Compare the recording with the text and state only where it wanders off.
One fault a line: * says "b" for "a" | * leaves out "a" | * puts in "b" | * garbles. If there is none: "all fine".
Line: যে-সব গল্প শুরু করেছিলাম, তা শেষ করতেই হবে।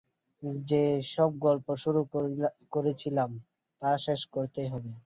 all fine